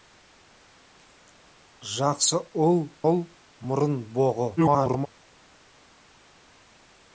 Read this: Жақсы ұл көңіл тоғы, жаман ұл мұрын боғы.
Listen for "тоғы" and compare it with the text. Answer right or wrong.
wrong